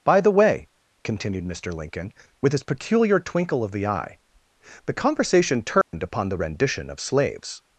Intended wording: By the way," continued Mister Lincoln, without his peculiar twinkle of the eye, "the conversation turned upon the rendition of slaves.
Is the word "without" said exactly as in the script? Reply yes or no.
no